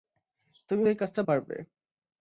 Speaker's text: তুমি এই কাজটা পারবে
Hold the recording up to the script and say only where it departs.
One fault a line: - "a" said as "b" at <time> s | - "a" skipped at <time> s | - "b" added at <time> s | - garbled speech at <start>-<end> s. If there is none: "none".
none